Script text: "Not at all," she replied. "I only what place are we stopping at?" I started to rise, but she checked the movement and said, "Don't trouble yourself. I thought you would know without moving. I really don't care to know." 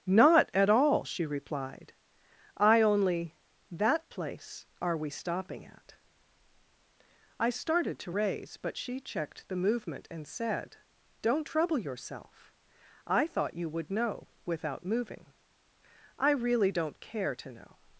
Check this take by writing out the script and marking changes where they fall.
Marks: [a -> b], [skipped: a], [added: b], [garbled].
"Not at all," she replied. "I only [what -> that] place are we stopping at?" I started to [rise, -> raise] but she checked the movement and said, "Don't trouble yourself. I thought you would know without moving. I really don't care to know."